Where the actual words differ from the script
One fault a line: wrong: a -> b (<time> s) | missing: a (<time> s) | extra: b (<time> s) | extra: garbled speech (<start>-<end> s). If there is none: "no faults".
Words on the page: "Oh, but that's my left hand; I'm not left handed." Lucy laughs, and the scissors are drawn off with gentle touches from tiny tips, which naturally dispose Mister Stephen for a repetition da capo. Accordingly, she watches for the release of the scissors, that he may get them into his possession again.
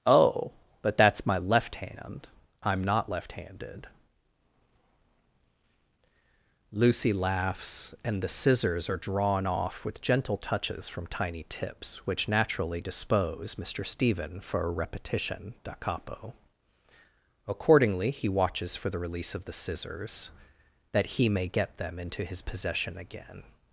wrong: she -> he (18.1 s)